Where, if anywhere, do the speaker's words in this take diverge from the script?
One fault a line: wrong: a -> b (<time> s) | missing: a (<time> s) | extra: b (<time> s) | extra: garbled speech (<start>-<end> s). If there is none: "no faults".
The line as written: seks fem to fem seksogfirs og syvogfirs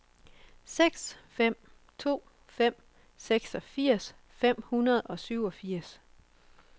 extra: fem hundrede (4.3 s)